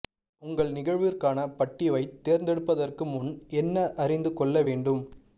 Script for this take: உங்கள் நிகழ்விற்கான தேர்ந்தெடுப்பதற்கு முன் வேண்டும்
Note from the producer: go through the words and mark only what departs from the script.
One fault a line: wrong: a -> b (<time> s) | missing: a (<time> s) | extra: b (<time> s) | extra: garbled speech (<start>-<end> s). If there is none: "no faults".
extra: பட்டிவைத் (1.6 s)
extra: என்ன அறிந்து கொள்ள (3.6 s)